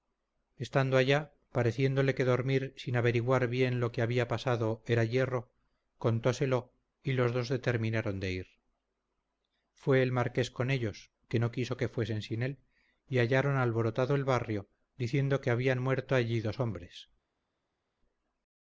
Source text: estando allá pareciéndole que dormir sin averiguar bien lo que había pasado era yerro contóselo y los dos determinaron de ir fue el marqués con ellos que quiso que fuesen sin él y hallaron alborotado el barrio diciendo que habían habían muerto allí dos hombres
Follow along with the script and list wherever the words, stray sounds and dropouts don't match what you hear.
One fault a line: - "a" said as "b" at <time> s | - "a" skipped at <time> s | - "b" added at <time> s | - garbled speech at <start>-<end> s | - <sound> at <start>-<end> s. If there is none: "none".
- "no" added at 11.4 s
- "habían" skipped at 15.8 s